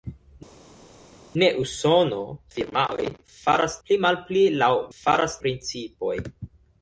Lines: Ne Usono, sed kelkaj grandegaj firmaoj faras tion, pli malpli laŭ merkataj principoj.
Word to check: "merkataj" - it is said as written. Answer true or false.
false